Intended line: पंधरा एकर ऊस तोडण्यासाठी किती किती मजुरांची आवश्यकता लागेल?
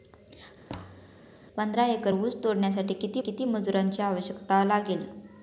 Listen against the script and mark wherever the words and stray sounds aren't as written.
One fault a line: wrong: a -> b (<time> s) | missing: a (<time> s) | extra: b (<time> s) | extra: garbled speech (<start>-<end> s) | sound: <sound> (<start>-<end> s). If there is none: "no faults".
sound: thud (0.7-1.3 s)